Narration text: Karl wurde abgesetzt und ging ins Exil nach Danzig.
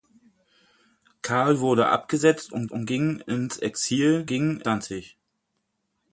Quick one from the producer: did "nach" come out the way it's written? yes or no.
no